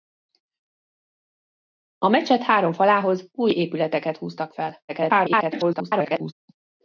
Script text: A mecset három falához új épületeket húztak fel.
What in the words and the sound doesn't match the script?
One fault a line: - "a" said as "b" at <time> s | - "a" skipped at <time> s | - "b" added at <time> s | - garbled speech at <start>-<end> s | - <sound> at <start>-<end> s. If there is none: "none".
- garbled speech at 4.9-6.3 s